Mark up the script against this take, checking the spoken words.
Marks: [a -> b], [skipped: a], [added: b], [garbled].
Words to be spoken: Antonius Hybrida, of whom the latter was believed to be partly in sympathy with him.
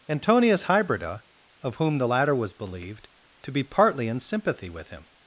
Antonius Hybrida, of whom the latter was believed to be partly in sympathy with him.